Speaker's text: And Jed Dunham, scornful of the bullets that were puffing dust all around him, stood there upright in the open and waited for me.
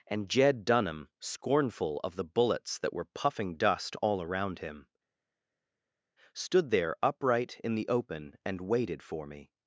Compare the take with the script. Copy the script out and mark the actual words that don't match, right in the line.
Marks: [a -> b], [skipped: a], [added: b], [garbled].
And Jed Dunham, scornful of the bullets that were puffing dust all around him, stood there upright in the open and waited for me.